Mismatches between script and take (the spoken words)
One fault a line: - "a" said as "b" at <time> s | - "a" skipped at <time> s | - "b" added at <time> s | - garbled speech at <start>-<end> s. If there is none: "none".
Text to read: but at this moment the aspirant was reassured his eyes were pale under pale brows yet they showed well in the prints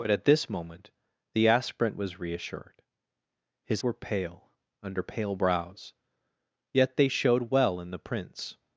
- "eyes" skipped at 3.8 s